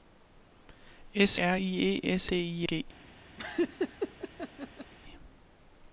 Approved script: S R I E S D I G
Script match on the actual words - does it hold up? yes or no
yes